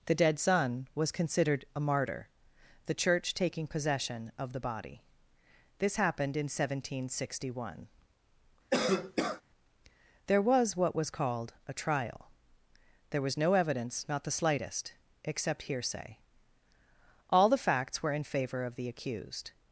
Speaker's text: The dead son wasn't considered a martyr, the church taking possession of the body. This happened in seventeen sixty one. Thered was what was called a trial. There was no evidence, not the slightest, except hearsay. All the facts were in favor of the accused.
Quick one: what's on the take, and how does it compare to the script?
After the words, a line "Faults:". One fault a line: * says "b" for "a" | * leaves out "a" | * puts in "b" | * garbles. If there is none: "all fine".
The dead son was considered a martyr, the church taking possession of the body. This happened in seventeen sixty one. There was what was called a trial. There was no evidence, not the slightest, except hearsay. All the facts were in favor of the accused.
Faults:
* says "was" for "wasn't"
* says "There" for "Thered"